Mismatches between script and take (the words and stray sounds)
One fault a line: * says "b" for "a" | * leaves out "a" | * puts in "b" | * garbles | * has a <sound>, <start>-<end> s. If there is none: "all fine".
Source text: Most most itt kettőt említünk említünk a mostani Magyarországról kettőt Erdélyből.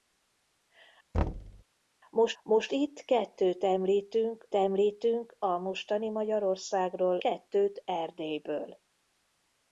* has a thud, 1.1-1.6 s